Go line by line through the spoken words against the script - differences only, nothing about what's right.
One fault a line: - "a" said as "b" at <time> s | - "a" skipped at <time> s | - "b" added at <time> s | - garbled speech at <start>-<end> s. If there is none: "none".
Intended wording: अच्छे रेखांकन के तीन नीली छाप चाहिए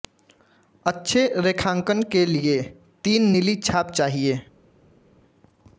- "लिए" added at 2.2 s